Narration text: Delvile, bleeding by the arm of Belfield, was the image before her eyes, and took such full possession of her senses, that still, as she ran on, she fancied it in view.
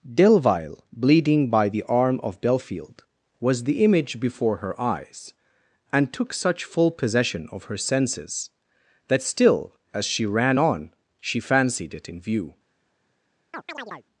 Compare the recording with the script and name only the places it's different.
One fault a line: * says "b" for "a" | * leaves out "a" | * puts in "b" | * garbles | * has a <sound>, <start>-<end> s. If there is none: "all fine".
* has a chirp, 13.5-14.1 s